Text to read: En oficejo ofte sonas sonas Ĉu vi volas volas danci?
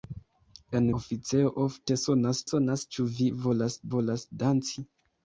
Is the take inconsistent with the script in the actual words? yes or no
no